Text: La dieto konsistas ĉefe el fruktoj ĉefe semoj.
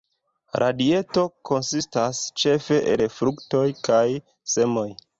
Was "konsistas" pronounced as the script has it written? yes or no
yes